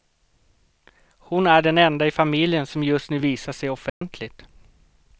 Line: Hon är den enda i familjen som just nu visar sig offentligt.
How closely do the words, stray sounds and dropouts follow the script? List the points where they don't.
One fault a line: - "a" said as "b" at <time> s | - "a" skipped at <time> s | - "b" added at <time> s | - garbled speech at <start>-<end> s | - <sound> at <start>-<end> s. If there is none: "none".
- dropout at 3.9-4.0 s